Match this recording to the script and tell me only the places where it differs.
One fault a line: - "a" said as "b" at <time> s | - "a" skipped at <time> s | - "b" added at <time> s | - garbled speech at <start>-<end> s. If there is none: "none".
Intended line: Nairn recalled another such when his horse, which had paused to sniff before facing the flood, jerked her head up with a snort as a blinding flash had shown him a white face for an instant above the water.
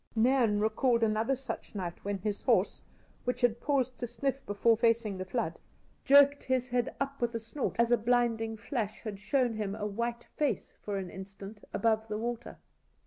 - "night" added at 1.8 s
- "her" said as "his" at 6.4 s